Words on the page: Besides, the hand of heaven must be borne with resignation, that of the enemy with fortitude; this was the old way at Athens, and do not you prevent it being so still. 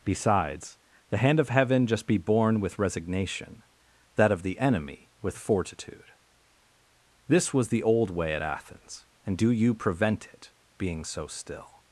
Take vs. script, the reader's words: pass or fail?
fail